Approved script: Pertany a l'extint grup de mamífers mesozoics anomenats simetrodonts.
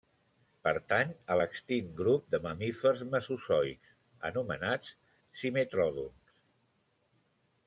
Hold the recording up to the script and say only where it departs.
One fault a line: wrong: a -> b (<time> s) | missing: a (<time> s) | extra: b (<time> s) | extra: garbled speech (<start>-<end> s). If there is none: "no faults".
no faults